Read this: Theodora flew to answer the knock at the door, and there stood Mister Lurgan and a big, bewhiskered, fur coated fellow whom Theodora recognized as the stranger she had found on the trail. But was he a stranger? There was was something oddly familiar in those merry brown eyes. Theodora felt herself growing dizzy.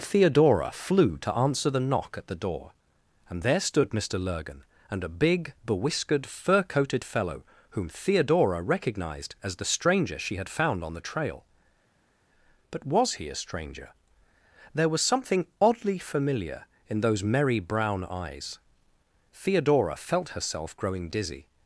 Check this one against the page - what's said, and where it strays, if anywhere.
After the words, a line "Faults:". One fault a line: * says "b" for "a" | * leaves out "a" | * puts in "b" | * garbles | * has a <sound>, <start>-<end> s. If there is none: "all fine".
Theodora flew to answer the knock at the door, and there stood Mister Lurgan and a big, bewhiskered, fur coated fellow whom Theodora recognized as the stranger she had found on the trail. But was he a stranger? There was something oddly familiar in those merry brown eyes. Theodora felt herself growing dizzy.
Faults:
* leaves out "was"